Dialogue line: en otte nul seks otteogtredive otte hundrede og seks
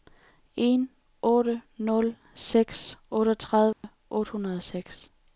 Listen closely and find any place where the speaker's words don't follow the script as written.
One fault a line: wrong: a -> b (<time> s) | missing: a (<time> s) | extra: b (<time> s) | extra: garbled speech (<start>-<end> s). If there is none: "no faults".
no faults